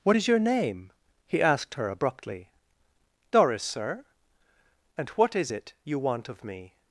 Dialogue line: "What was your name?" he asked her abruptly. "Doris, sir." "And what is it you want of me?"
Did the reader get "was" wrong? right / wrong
wrong